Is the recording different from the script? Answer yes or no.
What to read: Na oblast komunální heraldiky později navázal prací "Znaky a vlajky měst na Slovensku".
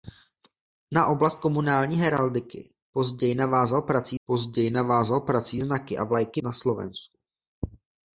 yes